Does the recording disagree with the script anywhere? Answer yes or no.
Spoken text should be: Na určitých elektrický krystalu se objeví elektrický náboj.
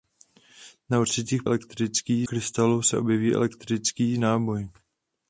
no